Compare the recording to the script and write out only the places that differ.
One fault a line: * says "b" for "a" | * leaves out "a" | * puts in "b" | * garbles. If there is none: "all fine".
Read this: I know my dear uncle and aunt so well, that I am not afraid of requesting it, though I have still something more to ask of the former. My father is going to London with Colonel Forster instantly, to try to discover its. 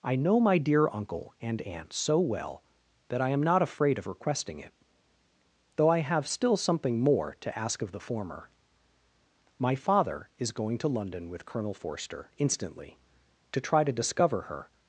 * says "her" for "its"